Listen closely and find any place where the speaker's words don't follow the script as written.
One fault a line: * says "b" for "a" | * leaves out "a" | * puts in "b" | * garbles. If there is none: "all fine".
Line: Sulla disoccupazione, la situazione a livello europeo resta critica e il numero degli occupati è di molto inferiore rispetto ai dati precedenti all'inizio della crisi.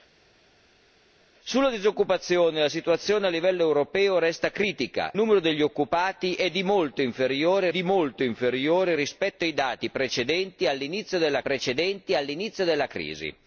* leaves out "e il"
* puts in "di molto inferiore"
* puts in "precedenti all'inizio della"